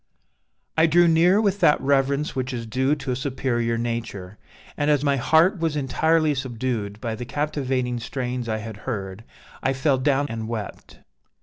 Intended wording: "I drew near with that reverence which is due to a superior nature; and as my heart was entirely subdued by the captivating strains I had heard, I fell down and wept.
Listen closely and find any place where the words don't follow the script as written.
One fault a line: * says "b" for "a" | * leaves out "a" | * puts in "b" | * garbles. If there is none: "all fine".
all fine